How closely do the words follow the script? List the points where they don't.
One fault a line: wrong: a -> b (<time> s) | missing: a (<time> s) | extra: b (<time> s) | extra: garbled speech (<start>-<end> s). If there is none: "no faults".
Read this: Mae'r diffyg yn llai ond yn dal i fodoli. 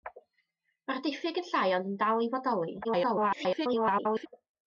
extra: garbled speech (2.8-4.3 s)